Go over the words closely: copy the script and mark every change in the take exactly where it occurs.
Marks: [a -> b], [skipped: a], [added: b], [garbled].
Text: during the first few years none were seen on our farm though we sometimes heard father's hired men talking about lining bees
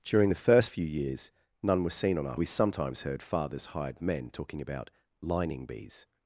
during the first few years none were seen on our [skipped: farm though] we sometimes heard father's hired men talking about lining bees